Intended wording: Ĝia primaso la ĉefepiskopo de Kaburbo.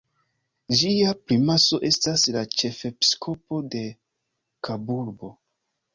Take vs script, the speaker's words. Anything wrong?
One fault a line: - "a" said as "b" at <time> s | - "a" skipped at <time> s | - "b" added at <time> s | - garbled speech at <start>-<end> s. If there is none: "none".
- "estas" added at 1.9 s